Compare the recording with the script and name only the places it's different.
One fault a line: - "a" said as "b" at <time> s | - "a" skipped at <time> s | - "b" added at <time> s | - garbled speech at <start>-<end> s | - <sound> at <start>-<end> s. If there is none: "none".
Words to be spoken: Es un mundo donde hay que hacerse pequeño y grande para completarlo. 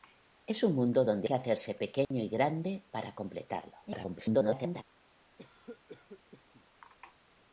- "hay" skipped at 1.3 s
- dropout at 2.0-2.1 s
- garbled speech at 3.9-4.8 s
- cough at 5.4-6.6 s